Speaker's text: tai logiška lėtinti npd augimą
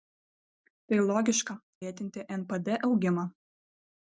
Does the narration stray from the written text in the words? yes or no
no